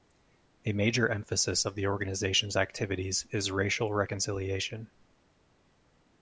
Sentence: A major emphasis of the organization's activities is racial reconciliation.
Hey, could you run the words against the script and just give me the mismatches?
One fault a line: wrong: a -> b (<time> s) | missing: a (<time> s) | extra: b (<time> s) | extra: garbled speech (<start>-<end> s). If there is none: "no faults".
no faults